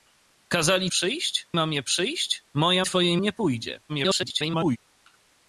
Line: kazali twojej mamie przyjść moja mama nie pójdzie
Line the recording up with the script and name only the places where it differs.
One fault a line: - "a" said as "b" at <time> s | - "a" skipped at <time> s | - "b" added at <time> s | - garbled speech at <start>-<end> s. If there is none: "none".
- "twojej" said as "przyjść" at 0.9 s
- "mama" said as "twojej" at 2.8 s
- garbled speech at 3.9-4.8 s